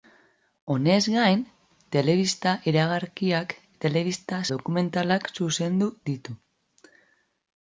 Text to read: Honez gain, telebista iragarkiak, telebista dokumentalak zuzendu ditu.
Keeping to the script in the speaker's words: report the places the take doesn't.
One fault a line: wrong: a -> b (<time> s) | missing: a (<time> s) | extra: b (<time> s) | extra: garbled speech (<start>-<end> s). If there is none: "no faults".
no faults